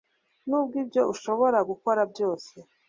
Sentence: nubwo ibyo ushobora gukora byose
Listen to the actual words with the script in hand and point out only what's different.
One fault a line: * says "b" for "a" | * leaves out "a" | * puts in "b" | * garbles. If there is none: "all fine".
all fine